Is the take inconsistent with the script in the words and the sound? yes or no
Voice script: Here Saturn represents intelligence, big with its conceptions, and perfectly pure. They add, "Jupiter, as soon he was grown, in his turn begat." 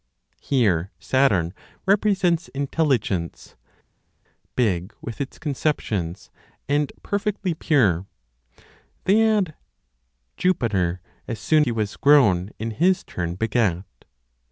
no